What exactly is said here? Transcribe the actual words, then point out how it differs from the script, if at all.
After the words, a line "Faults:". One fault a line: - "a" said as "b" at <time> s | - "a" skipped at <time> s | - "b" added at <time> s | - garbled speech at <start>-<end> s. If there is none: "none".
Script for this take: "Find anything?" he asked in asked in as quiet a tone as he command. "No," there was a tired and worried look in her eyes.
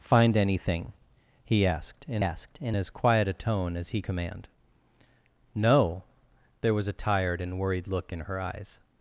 "Find anything?" he asked in asked in as quiet a tone as he command. "No," there was a tired and worried look in her eyes.
Faults:
none